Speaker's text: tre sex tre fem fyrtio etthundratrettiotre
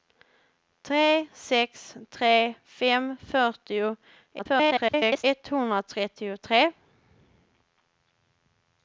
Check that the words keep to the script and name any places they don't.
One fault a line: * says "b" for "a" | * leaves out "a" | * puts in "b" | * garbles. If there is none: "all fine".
* garbles